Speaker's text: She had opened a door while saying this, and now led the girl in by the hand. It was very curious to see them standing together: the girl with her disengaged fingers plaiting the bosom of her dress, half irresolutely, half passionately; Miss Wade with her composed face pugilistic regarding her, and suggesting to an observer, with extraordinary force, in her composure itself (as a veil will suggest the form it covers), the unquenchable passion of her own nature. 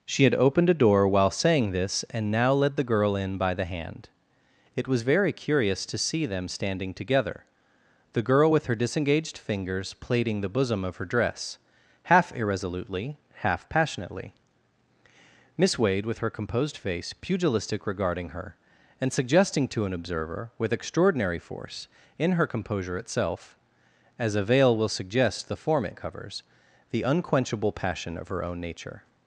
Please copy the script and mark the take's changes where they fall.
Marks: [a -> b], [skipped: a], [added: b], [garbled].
She had opened a door while saying this, and now led the girl in by the hand. It was very curious to see them standing together: the girl with her disengaged fingers plaiting the bosom of her dress, half irresolutely, half passionately; Miss Wade with her composed face pugilistic regarding her, and suggesting to an observer, with extraordinary force, in her composure itself (as a veil will suggest the form it covers), the unquenchable passion of her own nature.